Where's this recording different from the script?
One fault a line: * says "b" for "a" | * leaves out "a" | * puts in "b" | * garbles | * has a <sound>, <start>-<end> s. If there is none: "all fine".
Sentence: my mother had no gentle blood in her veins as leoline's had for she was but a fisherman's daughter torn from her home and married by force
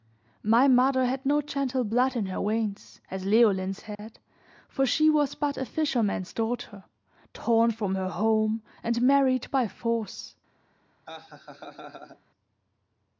* has a dropout, 3.9-4.0 s
* has a laugh, 11.1-12.2 s